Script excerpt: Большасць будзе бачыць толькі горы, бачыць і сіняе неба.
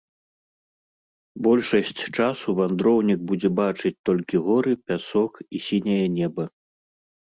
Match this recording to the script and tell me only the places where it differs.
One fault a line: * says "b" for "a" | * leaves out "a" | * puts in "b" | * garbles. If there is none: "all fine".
* puts in "часу вандроўнік"
* says "пясок" for "бачыць"